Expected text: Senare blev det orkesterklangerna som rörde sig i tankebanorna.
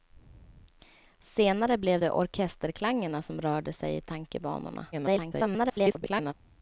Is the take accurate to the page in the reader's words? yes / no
no